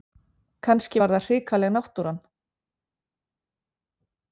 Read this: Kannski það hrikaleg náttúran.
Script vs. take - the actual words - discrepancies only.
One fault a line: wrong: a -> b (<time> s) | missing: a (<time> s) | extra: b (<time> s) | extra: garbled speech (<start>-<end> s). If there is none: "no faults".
extra: var (1.0 s)